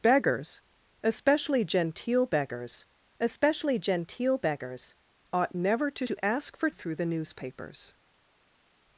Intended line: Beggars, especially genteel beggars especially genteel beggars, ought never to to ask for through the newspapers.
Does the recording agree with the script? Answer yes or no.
yes